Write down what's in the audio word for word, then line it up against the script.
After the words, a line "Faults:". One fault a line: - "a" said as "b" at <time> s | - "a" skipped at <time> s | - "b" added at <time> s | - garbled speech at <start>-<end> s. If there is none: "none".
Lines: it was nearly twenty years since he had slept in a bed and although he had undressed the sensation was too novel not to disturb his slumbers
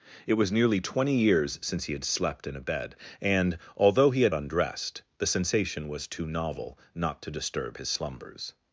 it was nearly twenty years since he had slept in a bed and although he had undressed the sensation was too novel not to disturb his slumbers
Faults:
none